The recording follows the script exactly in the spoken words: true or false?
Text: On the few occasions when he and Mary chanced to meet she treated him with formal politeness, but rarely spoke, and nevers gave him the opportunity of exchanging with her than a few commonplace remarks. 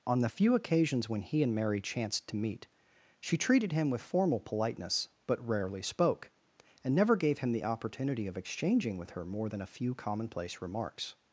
false